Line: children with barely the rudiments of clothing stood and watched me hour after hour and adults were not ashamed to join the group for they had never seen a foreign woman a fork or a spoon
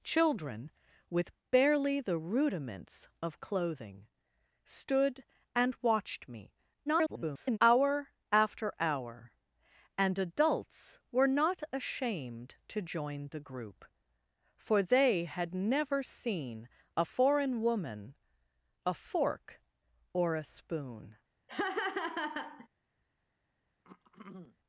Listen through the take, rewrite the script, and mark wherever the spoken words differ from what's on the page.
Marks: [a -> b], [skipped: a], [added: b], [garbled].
children with barely the rudiments of clothing stood and watched me [garbled] hour after hour and adults were not ashamed to join the group for they had never seen a foreign woman a fork or a spoon